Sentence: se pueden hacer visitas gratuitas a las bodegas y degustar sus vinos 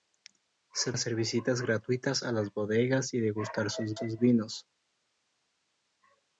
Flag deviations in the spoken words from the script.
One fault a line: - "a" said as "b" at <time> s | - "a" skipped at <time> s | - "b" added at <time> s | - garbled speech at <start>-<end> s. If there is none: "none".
- "pueden" skipped at 0.9 s
- "sus" added at 3.9 s